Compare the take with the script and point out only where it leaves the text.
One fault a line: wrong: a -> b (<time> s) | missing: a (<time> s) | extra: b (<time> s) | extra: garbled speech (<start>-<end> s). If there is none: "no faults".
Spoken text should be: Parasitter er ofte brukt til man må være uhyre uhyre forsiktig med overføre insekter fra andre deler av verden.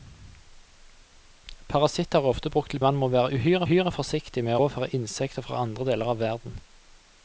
no faults